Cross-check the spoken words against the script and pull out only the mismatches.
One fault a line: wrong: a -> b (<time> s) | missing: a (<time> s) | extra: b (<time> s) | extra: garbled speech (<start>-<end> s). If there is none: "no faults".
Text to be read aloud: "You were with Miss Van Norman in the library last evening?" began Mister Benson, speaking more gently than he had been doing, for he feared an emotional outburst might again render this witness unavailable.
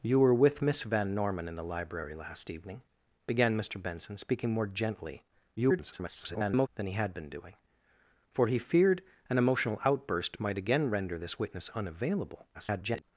extra: garbled speech (5.6-6.7 s)
extra: garbled speech (12.5-13.0 s)